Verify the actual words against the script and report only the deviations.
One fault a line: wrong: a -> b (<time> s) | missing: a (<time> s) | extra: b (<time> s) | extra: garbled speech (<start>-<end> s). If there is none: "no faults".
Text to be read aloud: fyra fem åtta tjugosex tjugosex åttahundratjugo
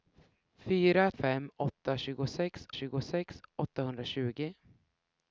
no faults